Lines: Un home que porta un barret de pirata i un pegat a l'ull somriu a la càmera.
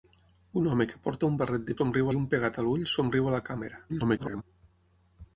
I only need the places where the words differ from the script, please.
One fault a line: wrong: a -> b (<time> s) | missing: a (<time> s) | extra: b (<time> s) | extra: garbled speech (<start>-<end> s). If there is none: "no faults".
wrong: pirata -> somriu (1.8 s)
extra: garbled speech (3.9-4.4 s)